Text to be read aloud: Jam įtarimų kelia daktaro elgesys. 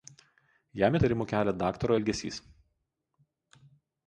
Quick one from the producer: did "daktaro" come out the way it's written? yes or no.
yes